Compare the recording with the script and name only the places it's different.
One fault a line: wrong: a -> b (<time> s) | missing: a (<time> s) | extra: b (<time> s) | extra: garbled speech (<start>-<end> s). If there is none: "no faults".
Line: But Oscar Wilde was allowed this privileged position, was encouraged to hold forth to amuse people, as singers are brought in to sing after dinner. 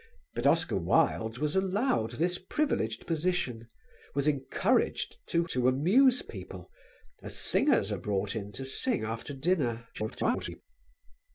missing: hold forth (5.4 s)
extra: garbled speech (9.9-10.6 s)